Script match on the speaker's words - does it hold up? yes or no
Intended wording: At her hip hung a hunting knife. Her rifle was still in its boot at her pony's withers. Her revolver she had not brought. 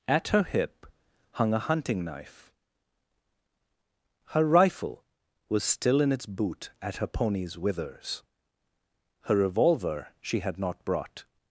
yes